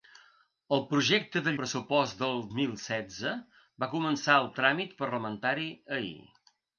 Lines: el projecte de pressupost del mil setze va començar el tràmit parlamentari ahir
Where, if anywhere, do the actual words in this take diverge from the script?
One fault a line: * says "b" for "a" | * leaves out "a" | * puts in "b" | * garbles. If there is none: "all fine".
all fine